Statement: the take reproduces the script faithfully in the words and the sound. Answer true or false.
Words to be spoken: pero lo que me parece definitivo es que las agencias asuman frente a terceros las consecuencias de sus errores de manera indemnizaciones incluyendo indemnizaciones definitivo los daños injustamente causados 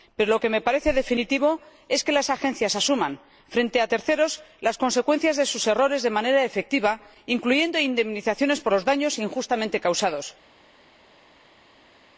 false